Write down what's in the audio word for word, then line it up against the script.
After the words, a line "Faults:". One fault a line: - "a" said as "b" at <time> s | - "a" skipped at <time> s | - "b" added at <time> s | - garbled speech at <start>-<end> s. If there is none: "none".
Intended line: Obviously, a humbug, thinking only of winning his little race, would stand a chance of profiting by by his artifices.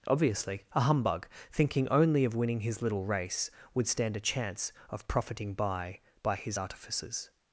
Obviously, a humbug, thinking only of winning his little race, would stand a chance of profiting by by his artifices.
Faults:
none